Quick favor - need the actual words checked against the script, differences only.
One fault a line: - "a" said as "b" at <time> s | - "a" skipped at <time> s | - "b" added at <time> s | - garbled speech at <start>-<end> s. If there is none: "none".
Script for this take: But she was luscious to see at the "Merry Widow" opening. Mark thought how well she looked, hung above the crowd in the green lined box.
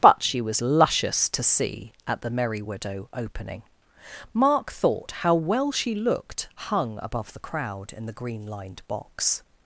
none